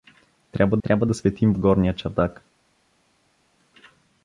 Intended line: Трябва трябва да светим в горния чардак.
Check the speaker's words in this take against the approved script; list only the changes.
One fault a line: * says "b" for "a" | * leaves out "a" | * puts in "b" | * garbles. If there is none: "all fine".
all fine